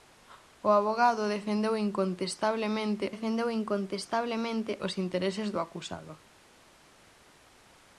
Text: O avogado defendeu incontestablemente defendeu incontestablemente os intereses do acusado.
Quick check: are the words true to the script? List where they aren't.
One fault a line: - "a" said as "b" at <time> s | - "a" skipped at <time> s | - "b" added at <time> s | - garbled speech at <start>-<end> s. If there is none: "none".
none